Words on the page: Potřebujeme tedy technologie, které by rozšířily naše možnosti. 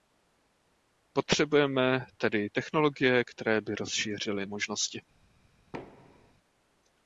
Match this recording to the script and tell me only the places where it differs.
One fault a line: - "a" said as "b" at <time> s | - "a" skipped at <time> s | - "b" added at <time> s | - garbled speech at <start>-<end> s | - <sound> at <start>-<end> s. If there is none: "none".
- "naše" skipped at 4.4 s
- thud at 5.7-6.3 s